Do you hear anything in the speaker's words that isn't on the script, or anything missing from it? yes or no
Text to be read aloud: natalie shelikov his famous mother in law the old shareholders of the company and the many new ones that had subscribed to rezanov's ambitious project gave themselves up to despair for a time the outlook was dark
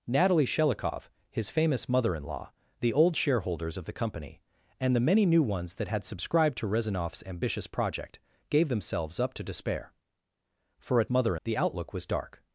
yes